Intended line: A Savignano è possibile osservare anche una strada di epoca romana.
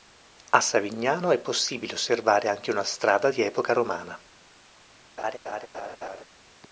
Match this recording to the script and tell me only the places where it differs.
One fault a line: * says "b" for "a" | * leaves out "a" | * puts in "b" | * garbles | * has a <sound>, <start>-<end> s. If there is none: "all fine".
* has a laugh, 5.2-6.2 s